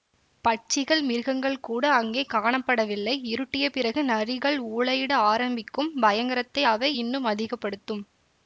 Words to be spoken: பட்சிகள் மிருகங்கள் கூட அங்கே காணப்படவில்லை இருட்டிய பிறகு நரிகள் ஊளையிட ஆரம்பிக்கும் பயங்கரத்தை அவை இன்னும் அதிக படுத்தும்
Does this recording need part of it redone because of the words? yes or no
no